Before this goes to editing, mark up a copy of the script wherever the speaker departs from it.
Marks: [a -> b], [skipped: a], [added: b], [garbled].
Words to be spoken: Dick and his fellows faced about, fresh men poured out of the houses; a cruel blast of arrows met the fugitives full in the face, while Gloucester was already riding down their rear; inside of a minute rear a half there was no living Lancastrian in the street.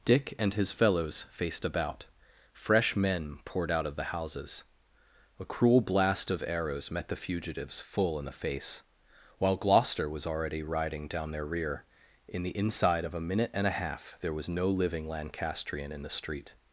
Dick and his fellows faced about, fresh men poured out of the houses; a cruel blast of arrows met the fugitives full in the face, while Gloucester was already riding down their rear; [added: in the] inside of a minute [rear -> and] a half there was no living Lancastrian in the street.